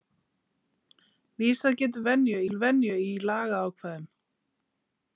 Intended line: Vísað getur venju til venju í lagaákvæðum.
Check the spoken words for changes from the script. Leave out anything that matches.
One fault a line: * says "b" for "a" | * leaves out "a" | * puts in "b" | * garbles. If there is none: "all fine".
all fine